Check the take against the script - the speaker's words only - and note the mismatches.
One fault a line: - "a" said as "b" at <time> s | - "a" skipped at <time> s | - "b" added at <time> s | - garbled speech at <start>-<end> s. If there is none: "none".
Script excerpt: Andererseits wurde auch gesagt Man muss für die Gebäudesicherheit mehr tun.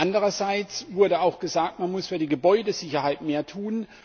none